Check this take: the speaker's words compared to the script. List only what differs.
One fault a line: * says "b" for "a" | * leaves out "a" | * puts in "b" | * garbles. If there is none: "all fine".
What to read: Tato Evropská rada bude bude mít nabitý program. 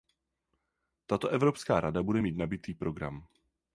* leaves out "bude"